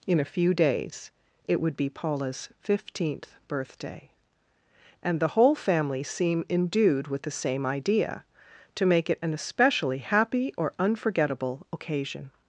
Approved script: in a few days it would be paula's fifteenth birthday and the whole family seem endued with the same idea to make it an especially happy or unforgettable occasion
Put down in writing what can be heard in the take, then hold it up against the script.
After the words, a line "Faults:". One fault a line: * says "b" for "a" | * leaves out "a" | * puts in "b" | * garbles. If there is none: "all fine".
in a few days it would be paula's fifteenth birthday and the whole family seem endued with the same idea to make it an especially happy or unforgettable occasion
Faults:
all fine